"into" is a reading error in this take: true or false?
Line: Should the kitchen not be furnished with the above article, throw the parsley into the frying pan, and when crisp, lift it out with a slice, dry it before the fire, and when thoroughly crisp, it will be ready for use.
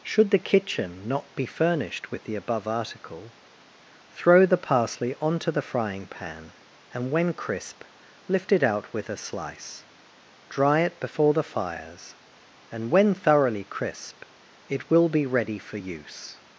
true